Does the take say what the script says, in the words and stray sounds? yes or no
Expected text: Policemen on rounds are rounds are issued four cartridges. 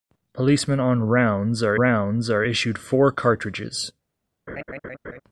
no